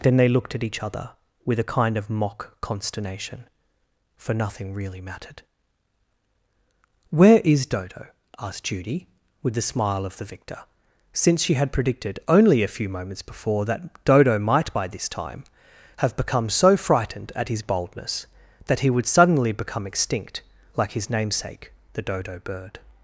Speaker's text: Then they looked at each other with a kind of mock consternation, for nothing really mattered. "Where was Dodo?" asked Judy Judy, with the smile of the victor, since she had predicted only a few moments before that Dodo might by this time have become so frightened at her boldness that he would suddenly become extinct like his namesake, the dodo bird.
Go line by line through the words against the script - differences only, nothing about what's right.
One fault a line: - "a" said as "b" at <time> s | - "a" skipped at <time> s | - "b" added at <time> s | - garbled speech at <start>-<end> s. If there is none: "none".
- "was" said as "is" at 7.4 s
- "Judy" skipped at 9.1 s
- "her" said as "his" at 17.5 s